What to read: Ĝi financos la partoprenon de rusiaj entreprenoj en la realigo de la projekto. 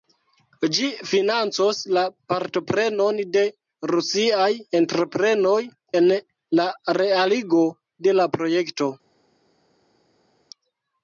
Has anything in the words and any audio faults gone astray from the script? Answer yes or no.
no